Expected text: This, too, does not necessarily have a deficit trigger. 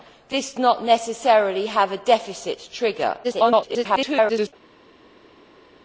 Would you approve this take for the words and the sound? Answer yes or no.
no